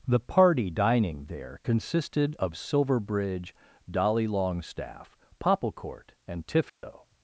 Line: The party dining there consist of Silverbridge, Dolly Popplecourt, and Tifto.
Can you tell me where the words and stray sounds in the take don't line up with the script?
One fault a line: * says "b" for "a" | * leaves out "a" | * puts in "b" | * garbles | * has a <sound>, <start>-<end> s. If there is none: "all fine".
* says "consisted" for "consist"
* puts in "Longstaff"
* has a dropout, 6.7-6.8 s